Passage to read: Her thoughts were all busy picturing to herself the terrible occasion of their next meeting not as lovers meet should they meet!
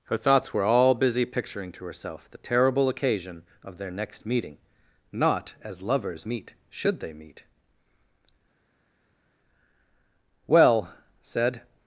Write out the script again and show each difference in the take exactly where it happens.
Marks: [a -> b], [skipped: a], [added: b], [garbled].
Her thoughts were all busy picturing to herself the terrible occasion of their next meeting not as lovers meet should they meet! [added: Well said]